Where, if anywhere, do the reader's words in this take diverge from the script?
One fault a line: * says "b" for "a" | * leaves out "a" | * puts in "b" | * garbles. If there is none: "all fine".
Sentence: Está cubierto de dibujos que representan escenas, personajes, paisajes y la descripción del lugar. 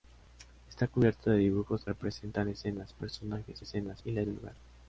* leaves out "que"
* says "escenas" for "paisajes"
* leaves out "descripción"